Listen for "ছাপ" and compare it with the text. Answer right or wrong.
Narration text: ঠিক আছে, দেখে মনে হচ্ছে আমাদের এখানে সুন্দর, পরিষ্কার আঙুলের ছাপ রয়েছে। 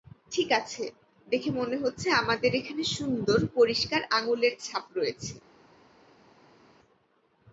right